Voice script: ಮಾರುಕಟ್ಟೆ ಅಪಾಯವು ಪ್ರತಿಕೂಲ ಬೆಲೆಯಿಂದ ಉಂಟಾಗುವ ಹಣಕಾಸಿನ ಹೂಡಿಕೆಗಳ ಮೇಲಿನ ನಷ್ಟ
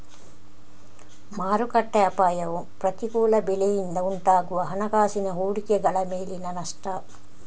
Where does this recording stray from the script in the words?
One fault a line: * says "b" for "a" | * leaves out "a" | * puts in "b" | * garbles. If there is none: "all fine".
all fine